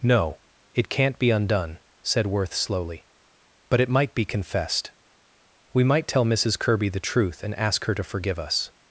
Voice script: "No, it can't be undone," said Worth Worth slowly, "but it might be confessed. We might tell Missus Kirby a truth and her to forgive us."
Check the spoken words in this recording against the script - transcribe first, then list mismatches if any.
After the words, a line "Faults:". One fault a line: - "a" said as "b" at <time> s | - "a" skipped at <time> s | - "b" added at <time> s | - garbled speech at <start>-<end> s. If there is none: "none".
"No, it can't be undone," said Worth slowly, "but it might be confessed. We might tell Missus Kirby the truth and ask her to forgive us."
Faults:
- "Worth" skipped at 2.5 s
- "a" said as "the" at 6.9 s
- "ask" added at 7.5 s